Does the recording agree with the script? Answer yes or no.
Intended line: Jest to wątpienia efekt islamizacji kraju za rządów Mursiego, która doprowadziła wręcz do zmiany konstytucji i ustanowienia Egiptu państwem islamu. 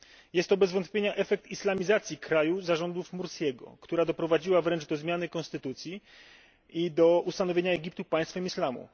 no